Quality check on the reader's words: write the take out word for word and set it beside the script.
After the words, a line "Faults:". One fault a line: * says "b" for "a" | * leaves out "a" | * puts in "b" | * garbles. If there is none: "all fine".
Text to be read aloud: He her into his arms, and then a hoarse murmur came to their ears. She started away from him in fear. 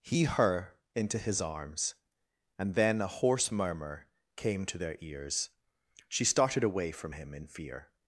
He her into his arms, and then a hoarse murmur came to their ears. She started away from him in fear.
Faults:
all fine